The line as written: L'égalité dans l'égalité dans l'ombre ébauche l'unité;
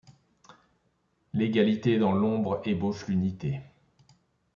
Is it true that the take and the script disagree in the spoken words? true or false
true